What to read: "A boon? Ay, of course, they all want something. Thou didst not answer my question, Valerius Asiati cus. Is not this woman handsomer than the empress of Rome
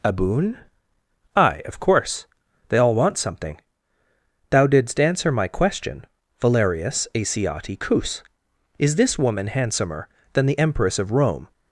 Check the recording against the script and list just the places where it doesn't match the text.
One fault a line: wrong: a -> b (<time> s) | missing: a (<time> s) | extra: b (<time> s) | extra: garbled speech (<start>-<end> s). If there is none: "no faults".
missing: not (5.0 s)
missing: not (9.0 s)